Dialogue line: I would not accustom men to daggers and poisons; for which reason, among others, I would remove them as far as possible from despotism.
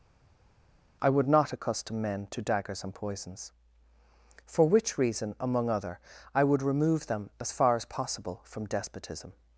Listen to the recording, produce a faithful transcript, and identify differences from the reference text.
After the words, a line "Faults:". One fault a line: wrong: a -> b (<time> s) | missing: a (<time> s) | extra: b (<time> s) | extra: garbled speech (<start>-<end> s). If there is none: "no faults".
I would not accustom men to daggers and poisons; for which reason, among other, I would remove them as far as possible from despotism.
Faults:
wrong: others -> other (5.7 s)